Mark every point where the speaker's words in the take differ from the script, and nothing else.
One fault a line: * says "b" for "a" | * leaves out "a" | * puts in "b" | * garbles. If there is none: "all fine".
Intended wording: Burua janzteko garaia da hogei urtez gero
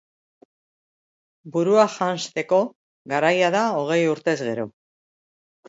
all fine